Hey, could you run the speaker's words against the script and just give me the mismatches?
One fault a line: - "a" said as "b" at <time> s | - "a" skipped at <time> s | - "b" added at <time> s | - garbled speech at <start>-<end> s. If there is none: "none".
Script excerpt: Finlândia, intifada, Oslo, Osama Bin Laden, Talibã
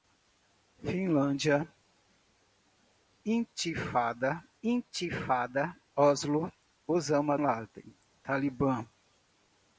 - "intifada" added at 4.6 s
- "Bin" skipped at 7.4 s